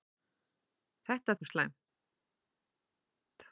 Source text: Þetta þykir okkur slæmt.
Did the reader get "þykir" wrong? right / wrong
wrong